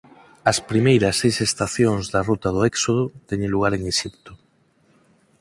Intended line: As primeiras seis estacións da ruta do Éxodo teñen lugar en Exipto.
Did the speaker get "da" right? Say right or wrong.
right